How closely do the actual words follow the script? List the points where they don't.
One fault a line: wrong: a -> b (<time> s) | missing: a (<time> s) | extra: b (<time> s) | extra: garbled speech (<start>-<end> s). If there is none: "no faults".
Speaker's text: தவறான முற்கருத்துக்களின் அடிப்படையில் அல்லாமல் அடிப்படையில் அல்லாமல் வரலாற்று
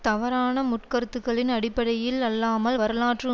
missing: அடிப்படையில் அல்லாமல் (2.8 s)